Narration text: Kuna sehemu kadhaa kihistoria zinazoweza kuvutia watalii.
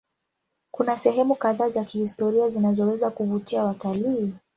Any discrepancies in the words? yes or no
yes